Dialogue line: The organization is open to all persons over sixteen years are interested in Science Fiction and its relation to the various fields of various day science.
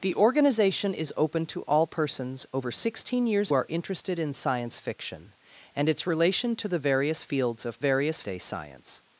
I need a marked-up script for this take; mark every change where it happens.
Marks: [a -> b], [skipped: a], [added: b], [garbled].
The organization is open to all persons over sixteen years are interested in Science Fiction and its relation to the various fields of various day science.